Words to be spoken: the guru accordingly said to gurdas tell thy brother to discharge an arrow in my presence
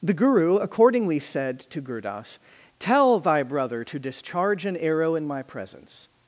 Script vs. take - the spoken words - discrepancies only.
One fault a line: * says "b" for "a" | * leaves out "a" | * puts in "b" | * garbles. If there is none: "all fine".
all fine